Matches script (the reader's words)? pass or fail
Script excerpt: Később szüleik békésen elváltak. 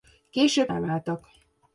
fail